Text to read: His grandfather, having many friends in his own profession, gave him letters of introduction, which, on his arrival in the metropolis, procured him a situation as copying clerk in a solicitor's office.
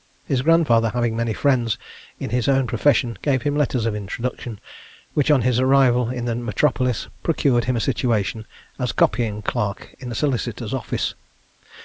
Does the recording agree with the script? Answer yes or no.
yes